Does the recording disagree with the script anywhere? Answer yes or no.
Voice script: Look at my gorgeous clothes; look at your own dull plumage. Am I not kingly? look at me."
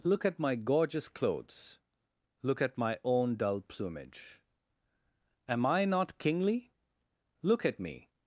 yes